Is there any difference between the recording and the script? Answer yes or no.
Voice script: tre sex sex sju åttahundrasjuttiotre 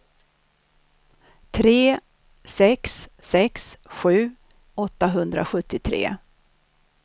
no